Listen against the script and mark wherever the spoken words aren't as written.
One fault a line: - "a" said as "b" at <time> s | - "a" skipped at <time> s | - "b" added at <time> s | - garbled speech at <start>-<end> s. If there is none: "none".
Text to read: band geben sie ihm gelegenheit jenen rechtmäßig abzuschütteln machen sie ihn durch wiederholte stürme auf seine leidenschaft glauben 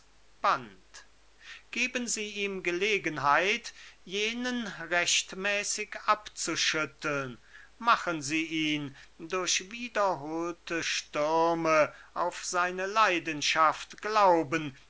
none